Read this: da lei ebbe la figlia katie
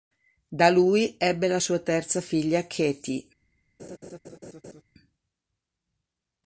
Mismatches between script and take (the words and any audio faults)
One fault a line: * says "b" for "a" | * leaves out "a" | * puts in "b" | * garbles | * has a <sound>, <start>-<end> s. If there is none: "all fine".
* says "lui" for "lei"
* puts in "sua terza"
* has a laugh, 3.8-4.8 s